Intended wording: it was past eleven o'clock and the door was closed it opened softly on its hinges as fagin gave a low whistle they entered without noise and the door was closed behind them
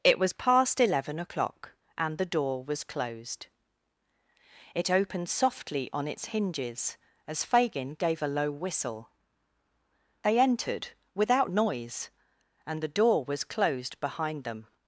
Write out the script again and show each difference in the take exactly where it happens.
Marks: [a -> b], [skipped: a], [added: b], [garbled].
it was past eleven o'clock and the door was closed it opened softly on its hinges as fagin gave a low whistle they entered without noise and the door was closed behind them